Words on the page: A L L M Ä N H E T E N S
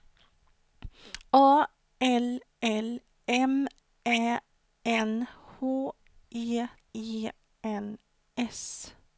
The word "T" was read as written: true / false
false